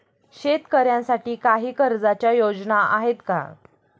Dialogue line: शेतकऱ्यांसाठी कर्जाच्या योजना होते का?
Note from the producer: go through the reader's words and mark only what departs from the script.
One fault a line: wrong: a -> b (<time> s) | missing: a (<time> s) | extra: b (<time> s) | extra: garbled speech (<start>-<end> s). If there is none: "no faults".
extra: काही (1.4 s)
wrong: होते -> आहेत (2.9 s)